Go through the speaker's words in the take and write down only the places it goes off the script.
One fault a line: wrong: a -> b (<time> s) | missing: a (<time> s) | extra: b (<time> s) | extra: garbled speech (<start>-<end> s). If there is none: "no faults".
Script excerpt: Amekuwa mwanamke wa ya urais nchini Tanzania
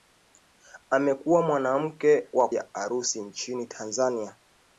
no faults